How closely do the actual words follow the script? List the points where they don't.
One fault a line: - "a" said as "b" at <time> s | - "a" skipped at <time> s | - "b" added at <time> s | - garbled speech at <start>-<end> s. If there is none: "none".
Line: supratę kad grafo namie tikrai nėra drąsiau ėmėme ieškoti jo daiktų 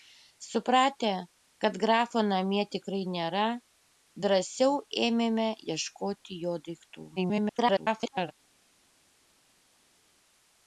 - garbled speech at 7.2-8.3 s